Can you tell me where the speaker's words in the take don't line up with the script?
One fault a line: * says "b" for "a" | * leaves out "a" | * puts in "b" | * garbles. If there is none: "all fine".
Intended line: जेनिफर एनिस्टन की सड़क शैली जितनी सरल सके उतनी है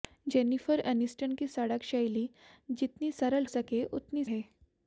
all fine